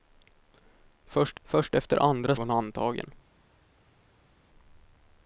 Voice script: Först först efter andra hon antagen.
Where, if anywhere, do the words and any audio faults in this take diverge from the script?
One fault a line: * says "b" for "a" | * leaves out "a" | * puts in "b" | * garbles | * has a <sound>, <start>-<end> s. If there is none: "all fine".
all fine